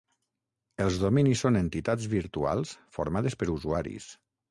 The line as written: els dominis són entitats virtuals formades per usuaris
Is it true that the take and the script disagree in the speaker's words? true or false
false